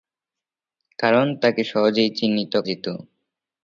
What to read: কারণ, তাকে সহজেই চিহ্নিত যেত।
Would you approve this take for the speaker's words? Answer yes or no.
yes